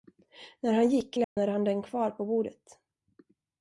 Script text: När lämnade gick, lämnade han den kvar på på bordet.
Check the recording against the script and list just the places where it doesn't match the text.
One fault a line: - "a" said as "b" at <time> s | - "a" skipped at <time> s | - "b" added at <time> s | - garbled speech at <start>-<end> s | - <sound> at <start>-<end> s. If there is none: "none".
- "lämnade" said as "han" at 0.7 s
- dropout at 1.2-1.4 s
- "på" skipped at 2.2 s